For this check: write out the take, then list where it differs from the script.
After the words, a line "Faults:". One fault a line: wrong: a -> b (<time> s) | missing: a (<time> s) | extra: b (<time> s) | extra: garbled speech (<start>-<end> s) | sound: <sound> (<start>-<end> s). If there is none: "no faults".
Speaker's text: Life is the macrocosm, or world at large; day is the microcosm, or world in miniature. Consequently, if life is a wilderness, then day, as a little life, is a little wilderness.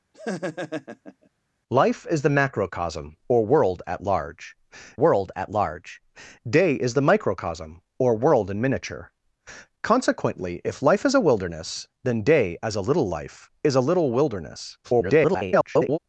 Life is the macrocosm, or world at large world at large; day is the microcosm, or world in miniature. Consequently, if life is a wilderness, then day, as a little life, is a little wilderness. [garbled]
Faults:
sound: laugh (0.1-1.3 s)
extra: world at large (4.9 s)
extra: garbled speech (14.8-16.0 s)